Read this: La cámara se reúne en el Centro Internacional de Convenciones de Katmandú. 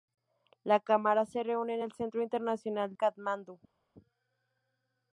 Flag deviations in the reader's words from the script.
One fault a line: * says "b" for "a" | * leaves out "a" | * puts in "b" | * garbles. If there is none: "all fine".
* leaves out "de Convenciones de"